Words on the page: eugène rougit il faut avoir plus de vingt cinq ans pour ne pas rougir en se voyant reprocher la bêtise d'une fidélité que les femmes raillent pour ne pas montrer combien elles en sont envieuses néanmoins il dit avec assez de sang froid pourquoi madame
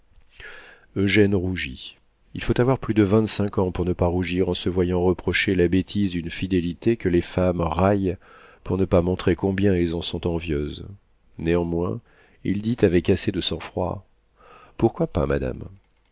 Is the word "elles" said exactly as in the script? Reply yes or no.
yes